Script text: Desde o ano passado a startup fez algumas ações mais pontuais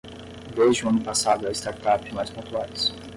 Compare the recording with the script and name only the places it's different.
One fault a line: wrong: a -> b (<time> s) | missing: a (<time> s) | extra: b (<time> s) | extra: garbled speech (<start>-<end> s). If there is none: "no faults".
missing: fez algumas ações (2.0 s)